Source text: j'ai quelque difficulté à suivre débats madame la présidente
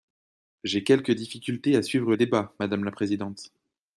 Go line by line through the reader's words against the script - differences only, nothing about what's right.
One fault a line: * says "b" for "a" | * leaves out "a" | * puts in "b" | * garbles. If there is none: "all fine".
all fine